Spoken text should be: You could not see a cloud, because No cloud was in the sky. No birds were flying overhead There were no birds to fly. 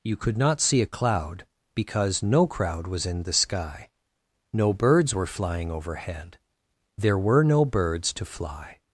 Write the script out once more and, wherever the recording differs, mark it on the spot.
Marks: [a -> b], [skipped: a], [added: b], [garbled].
You could not see a cloud, because No [cloud -> crowd] was in the sky. No birds were flying overhead There were no birds to fly.